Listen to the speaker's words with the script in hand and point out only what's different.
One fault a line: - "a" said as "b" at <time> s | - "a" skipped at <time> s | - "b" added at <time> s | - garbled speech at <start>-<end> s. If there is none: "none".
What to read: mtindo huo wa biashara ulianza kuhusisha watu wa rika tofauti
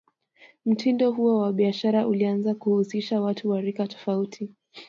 none